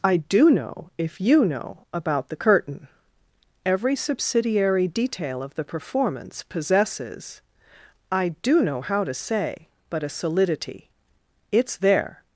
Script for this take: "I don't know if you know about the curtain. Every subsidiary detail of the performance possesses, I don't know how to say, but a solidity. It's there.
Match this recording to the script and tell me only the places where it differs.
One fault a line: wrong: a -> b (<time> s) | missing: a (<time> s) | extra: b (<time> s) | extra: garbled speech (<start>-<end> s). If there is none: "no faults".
wrong: don't -> do (0.2 s)
wrong: don't -> do (8.4 s)